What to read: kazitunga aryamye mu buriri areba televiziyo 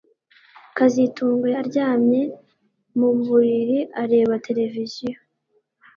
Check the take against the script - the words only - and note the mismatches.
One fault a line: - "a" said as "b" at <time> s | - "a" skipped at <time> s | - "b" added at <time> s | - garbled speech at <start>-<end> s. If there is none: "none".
none